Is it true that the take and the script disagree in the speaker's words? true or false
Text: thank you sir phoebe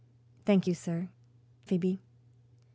false